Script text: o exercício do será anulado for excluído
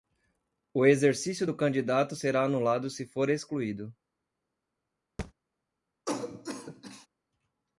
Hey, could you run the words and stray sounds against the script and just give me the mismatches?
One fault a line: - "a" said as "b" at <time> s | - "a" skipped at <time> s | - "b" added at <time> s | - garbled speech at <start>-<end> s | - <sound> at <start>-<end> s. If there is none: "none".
- "candidato" added at 1.5 s
- "se" added at 2.9 s
- thud at 5.2-5.3 s
- cough at 6.1-7.1 s